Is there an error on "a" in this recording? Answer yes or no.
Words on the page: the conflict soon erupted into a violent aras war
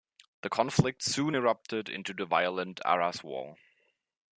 yes